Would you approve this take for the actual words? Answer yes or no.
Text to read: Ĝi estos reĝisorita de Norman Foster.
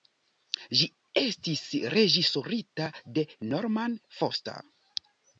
no